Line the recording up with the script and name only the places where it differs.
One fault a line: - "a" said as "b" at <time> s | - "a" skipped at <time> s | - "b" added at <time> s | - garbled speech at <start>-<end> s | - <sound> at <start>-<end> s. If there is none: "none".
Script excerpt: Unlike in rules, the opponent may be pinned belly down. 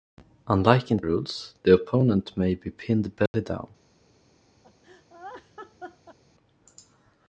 - dropout at 3.3-3.3 s
- laugh at 4.6-6.2 s